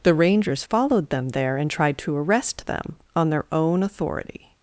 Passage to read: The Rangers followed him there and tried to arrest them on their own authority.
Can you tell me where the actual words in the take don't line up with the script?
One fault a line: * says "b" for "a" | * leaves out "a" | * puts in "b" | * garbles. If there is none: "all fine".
* says "them" for "him"